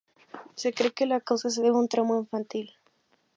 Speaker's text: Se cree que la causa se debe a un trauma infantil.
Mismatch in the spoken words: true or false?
false